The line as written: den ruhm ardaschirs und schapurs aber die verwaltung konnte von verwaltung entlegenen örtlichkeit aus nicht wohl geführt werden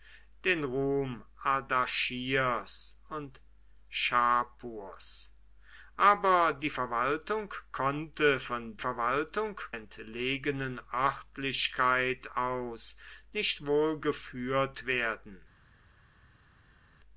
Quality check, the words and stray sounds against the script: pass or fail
pass